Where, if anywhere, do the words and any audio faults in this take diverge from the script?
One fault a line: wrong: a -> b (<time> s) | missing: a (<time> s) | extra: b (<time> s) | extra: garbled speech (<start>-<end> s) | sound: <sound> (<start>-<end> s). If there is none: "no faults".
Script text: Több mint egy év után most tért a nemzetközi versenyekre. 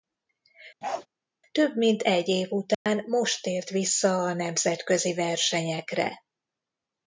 sound: bark (0.8-1.1 s)
sound: dropout (2.7-2.9 s)
extra: vissza (3.7 s)